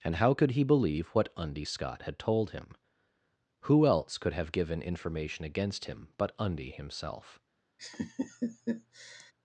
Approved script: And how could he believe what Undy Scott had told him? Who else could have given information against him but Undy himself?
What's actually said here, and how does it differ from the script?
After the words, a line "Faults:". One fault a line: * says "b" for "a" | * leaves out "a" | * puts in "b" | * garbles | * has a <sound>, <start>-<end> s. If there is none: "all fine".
And how could he believe what Undy Scott had told him? Who else could have given information against him but Undy himself?
Faults:
* has a laugh, 7.8-9.3 s